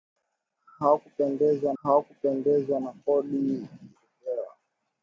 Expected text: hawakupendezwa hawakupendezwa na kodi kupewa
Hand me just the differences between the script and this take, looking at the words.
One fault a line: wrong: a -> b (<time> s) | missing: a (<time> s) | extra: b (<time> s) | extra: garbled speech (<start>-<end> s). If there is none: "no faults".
no faults